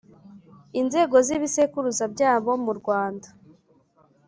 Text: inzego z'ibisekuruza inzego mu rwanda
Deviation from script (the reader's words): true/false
true